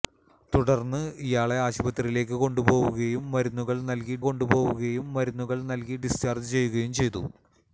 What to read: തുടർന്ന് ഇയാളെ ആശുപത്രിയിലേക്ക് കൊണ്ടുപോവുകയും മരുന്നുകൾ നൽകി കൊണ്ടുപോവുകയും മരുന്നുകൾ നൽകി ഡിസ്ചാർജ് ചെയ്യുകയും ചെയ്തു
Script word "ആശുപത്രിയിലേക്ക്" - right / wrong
right